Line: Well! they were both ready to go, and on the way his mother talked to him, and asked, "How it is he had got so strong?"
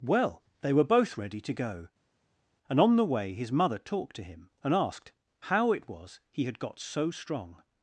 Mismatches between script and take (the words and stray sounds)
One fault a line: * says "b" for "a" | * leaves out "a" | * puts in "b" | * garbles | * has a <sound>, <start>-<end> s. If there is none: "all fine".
* says "was" for "is"